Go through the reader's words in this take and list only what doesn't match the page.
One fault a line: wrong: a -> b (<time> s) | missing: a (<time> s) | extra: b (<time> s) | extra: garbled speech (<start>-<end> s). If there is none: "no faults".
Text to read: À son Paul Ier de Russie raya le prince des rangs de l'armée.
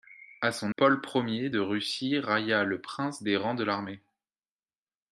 no faults